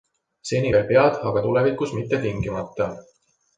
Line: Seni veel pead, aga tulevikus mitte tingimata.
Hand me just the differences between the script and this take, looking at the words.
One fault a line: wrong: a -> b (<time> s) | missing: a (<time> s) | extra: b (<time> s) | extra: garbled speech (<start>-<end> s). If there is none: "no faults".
no faults